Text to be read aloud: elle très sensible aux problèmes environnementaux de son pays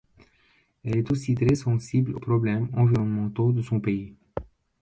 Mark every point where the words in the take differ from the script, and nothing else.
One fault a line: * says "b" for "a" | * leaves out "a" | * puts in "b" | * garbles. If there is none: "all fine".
* puts in "est aussi"